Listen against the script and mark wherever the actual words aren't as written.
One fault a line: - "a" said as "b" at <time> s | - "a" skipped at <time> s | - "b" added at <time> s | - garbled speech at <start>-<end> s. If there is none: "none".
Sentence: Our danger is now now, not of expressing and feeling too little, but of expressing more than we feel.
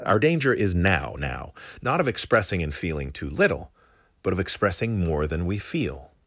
none